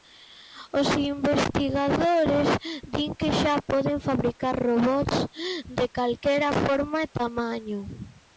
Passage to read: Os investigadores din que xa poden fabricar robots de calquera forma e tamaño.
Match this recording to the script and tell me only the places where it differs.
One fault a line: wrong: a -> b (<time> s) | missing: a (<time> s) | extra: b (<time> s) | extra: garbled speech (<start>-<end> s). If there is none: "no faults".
no faults